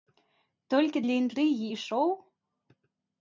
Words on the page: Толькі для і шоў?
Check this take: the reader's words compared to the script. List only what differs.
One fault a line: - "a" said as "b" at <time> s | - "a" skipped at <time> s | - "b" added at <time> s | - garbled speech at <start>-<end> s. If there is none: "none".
- "інтрыгі" added at 1.2 s